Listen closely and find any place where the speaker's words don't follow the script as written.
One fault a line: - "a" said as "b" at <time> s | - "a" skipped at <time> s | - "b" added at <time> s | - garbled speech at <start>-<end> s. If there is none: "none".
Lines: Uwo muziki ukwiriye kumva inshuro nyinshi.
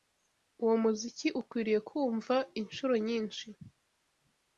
none